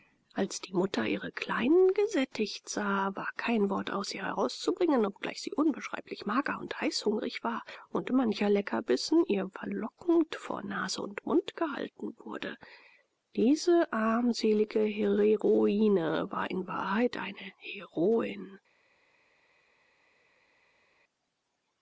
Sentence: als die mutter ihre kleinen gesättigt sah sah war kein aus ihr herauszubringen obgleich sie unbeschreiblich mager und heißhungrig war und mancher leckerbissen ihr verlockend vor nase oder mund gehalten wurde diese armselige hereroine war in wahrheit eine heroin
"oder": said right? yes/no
no